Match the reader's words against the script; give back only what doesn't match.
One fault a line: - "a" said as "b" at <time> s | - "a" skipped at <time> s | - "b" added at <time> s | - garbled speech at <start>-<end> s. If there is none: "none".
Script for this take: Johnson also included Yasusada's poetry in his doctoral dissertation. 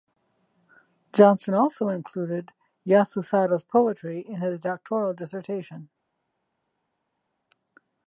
none